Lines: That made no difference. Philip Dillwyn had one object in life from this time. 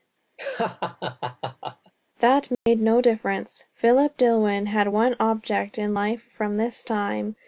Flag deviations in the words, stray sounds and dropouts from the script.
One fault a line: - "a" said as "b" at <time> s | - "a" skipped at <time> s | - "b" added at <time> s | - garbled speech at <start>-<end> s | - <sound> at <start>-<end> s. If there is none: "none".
- laugh at 0.4-1.9 s
- dropout at 2.5-2.7 s